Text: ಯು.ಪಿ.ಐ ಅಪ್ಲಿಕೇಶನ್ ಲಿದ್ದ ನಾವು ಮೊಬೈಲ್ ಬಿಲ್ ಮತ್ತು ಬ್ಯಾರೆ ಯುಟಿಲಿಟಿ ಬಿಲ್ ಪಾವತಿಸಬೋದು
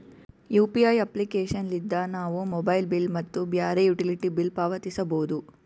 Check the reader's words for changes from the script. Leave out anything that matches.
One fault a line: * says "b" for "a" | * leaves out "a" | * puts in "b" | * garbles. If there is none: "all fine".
all fine